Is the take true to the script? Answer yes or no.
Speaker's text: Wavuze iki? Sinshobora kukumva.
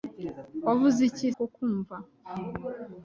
no